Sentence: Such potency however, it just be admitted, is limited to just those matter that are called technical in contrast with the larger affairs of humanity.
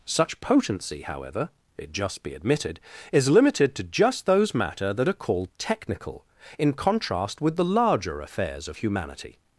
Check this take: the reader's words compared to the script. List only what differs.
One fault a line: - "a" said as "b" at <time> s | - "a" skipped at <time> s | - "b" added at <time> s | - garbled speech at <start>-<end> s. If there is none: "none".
none